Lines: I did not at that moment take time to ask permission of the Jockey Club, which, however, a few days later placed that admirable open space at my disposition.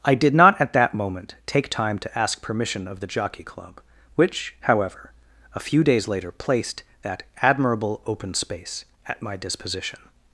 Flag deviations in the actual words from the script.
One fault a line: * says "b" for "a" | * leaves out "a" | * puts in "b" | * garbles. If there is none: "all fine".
all fine